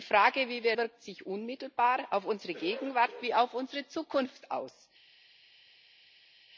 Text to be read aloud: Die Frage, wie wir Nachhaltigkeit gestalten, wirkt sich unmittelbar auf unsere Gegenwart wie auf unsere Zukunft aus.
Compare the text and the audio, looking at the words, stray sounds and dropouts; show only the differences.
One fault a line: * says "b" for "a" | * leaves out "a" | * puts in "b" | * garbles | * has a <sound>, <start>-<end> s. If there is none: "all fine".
* leaves out "Nachhaltigkeit gestalten"